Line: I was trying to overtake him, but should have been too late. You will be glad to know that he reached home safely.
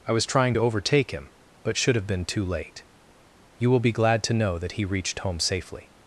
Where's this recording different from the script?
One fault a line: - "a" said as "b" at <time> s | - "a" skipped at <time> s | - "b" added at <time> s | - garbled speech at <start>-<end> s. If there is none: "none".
none